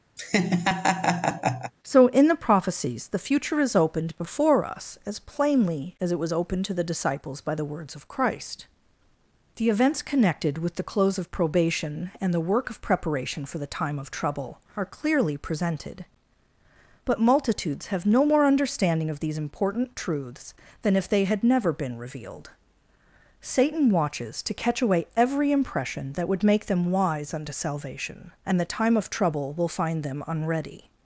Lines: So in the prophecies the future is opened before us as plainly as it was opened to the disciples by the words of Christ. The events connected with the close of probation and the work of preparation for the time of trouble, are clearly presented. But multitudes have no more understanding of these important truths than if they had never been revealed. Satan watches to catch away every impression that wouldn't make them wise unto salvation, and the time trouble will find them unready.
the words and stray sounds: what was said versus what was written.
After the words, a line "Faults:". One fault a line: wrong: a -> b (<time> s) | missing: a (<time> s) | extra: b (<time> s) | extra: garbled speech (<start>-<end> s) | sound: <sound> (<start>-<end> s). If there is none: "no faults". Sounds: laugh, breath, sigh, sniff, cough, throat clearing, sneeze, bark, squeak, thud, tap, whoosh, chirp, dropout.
So in the prophecies the future is opened before us as plainly as it was opened to the disciples by the words of Christ. The events connected with the close of probation and the work of preparation for the time of trouble, are clearly presented. But multitudes have no more understanding of these important truths than if they had never been revealed. Satan watches to catch away every impression that would make them wise unto salvation, and the time of trouble will find them unready.
Faults:
sound: laugh (0.2-1.7 s)
wrong: wouldn't -> would (26.3 s)
extra: of (29.0 s)